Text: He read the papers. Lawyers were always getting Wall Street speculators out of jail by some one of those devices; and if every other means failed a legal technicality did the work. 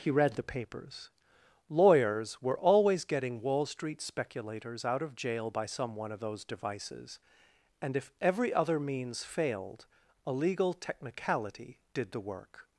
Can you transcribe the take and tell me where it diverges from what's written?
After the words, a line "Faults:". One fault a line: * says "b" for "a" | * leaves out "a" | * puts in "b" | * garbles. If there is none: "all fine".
He read the papers. Lawyers were always getting Wall Street speculators out of jail by some one of those devices; and if every other means failed a legal technicality did the work.
Faults:
all fine